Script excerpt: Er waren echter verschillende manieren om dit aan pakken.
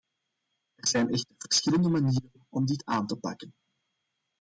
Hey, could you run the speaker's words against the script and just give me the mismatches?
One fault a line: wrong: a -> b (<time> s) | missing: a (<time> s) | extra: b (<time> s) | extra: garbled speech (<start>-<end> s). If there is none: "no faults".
wrong: waren -> zijn (0.9 s)
extra: te (3.1 s)